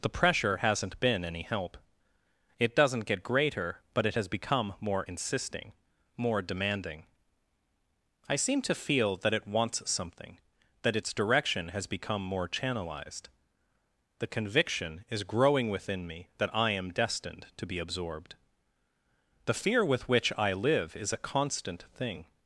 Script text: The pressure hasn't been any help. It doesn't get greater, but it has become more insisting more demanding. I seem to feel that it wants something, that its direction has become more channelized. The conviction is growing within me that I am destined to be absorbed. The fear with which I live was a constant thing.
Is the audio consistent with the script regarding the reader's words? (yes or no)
no